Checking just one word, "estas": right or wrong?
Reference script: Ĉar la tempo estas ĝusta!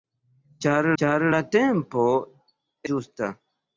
wrong